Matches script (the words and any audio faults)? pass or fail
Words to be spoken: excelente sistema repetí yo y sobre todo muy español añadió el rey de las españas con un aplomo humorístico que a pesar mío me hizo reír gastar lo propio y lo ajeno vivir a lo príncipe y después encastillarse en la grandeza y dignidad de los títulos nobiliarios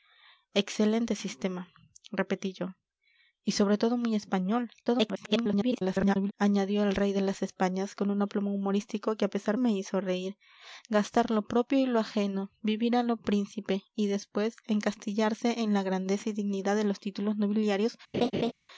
fail